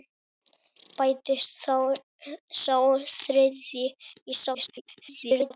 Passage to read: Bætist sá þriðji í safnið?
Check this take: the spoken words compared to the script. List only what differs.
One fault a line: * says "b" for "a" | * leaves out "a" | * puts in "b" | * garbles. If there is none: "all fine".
* garbles